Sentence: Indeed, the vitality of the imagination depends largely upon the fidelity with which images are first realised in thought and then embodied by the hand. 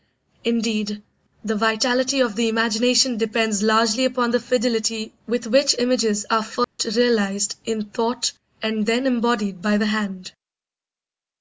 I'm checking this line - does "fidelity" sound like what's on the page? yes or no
yes